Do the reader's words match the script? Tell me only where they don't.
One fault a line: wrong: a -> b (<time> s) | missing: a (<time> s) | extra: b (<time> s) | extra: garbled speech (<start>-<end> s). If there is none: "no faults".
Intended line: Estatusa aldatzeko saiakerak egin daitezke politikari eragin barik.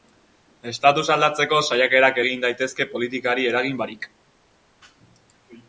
no faults